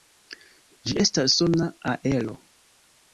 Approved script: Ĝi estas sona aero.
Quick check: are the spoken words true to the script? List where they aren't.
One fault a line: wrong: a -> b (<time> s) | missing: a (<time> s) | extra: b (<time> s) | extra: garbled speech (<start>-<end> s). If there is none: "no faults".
no faults